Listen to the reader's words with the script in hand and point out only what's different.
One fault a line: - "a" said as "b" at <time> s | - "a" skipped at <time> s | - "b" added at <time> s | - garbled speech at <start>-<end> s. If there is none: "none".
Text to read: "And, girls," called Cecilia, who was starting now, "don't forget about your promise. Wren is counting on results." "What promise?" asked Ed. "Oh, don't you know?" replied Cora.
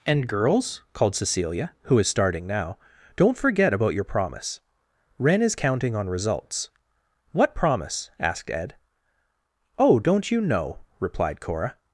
- "was" said as "is" at 2.0 s